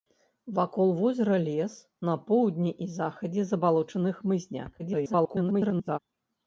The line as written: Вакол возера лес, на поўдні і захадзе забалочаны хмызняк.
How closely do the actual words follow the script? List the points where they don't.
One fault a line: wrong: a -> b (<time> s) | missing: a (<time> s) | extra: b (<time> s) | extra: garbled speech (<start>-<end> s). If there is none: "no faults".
extra: garbled speech (4.8-6.0 s)